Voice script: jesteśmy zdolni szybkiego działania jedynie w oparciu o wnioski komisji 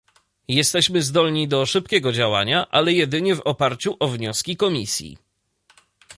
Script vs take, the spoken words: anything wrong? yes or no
yes